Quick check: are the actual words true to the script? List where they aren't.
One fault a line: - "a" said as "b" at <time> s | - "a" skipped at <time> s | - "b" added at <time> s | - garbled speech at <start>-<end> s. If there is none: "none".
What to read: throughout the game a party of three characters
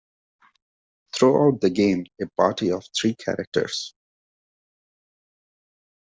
none